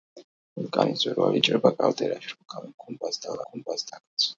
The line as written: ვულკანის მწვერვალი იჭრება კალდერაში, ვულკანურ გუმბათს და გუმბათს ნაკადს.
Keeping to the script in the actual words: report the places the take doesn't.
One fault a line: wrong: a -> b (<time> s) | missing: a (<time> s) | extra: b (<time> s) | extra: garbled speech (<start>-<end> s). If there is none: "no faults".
no faults